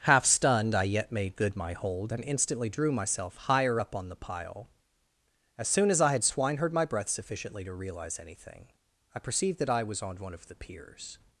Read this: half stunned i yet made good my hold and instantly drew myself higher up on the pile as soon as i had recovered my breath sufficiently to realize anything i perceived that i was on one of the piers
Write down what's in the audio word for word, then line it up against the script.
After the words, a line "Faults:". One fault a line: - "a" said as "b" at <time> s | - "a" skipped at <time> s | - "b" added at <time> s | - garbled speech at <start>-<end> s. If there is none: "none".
half stunned i yet made good my hold and instantly drew myself higher up on the pile as soon as i had swineherd my breath sufficiently to realize anything i perceived that i was on one of the piers
Faults:
- "recovered" said as "swineherd" at 6.2 s